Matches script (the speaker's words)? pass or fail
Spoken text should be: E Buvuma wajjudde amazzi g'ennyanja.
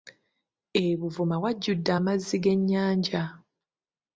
pass